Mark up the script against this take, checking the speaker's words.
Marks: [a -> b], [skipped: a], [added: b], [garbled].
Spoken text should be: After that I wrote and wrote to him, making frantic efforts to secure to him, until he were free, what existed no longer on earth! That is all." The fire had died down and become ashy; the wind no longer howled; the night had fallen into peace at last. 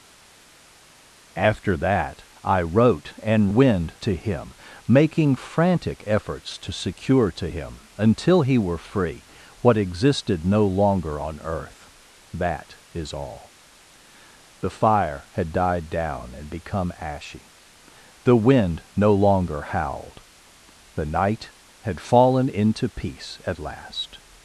After that I wrote and [wrote -> wind] to him, making frantic efforts to secure to him, until he were free, what existed no longer on earth! That is all." The fire had died down and become ashy; the wind no longer howled; the night had fallen into peace at last.